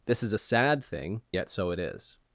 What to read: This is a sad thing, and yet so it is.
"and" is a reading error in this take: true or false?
true